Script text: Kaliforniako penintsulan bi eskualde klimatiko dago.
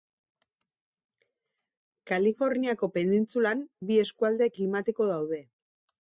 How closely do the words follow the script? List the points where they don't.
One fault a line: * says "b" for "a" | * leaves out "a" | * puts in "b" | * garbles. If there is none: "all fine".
* says "daude" for "dago"